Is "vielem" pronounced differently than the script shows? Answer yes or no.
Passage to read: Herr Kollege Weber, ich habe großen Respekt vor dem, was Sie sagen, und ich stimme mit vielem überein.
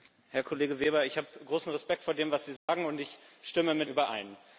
yes